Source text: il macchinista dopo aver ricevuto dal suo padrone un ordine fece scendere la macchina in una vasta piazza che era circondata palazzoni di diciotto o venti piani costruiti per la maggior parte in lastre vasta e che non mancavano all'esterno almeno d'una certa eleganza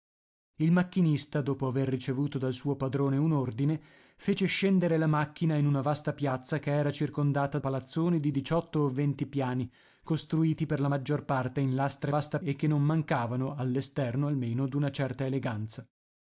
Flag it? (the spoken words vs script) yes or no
no